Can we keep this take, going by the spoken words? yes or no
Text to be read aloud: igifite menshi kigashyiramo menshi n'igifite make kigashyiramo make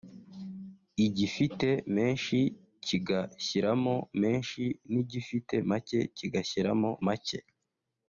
yes